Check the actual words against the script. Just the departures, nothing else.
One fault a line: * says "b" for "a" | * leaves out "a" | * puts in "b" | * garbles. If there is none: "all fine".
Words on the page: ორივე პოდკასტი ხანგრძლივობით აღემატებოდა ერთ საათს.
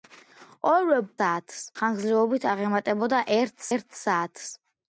* says "საათს" for "პოდკასტი"
* puts in "ერთ"